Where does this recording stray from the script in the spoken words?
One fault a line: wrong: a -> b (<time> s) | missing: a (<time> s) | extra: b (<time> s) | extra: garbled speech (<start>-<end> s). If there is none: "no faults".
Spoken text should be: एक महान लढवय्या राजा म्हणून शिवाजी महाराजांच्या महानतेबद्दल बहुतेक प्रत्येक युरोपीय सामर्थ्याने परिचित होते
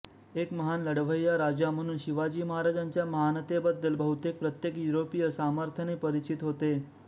no faults